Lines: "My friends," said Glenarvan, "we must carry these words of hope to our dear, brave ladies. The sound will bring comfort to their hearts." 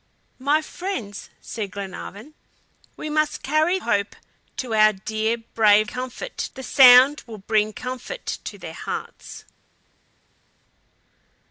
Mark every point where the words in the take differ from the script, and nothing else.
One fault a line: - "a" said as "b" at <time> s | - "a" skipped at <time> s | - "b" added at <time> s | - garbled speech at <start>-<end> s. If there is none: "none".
- "these words of" skipped at 3.8 s
- "ladies" said as "comfort" at 5.9 s